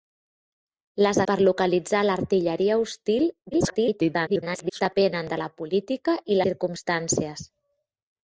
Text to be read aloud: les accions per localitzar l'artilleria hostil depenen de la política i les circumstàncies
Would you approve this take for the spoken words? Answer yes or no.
no